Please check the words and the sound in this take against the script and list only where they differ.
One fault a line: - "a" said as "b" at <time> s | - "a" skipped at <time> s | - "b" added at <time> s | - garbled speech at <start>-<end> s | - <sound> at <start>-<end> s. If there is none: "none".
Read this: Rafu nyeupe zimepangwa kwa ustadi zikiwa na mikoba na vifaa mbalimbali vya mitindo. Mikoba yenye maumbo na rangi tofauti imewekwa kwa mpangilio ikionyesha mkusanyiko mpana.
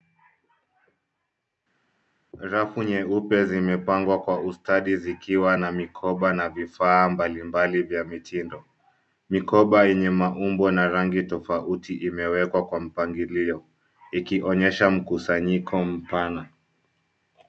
none